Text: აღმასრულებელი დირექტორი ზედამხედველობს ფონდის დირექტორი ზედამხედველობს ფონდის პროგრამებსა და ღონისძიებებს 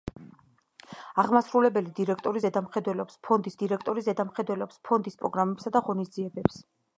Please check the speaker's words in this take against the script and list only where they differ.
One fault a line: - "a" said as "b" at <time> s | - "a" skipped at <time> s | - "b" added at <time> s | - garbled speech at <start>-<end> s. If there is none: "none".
none